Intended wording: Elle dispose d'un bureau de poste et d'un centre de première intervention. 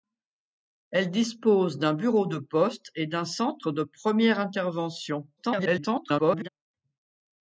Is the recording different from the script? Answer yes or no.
yes